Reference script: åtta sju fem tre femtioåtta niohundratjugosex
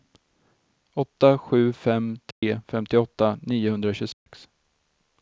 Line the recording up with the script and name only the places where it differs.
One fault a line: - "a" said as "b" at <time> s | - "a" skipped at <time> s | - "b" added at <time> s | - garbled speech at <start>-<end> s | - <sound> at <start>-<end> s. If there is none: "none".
- dropout at 2.3-2.4 s
- dropout at 4.1-4.3 s